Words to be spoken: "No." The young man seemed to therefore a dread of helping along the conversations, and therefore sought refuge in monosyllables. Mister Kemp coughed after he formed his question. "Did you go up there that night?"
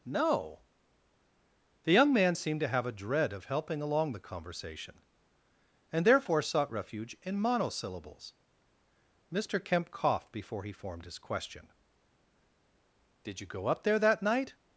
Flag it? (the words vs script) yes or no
yes